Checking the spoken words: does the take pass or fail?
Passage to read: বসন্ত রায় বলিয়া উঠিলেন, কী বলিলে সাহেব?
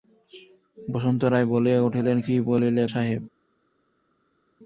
pass